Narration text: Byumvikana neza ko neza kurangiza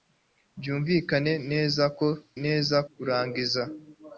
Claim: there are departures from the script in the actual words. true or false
false